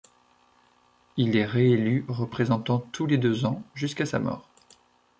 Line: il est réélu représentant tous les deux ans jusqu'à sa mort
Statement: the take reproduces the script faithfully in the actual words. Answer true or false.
true